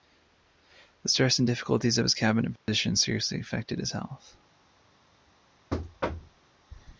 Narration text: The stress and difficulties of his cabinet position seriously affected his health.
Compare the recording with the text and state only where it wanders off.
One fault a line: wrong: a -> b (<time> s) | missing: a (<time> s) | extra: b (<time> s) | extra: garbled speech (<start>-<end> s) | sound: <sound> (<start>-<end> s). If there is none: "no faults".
sound: dropout (2.6-2.7 s)
sound: thud (5.7-6.4 s)